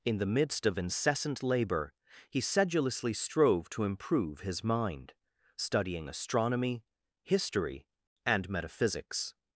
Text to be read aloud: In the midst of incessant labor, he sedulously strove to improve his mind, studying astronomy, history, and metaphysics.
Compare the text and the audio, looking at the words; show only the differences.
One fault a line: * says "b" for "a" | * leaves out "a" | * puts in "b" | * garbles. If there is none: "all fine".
all fine